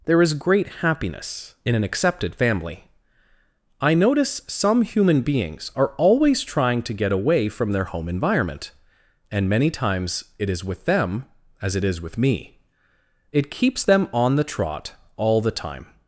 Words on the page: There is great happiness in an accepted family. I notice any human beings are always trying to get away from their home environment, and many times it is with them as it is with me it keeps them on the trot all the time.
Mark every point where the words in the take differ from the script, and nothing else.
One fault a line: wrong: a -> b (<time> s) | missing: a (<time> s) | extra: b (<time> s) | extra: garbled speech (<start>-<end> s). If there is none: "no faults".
wrong: any -> some (4.5 s)